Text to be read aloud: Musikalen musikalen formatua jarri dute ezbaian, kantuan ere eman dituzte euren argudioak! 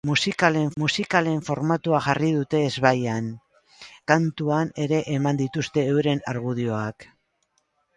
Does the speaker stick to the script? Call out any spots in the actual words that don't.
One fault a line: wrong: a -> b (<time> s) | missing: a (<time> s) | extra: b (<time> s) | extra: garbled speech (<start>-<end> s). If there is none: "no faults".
no faults